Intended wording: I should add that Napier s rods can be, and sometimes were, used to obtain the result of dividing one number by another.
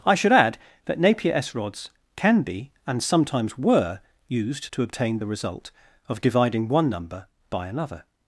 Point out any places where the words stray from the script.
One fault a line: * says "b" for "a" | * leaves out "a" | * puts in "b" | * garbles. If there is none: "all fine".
all fine